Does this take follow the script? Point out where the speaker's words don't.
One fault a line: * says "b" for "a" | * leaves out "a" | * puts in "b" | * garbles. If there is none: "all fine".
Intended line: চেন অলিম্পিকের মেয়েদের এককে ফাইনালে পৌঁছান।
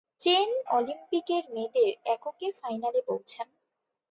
all fine